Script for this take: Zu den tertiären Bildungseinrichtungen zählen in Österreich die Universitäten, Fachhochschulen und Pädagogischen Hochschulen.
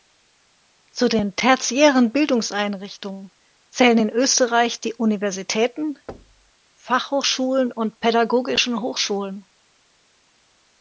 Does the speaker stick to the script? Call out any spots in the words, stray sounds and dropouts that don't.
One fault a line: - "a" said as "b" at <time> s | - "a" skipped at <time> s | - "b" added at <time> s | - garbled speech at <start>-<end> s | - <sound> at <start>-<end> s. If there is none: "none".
- thud at 6.1-6.5 s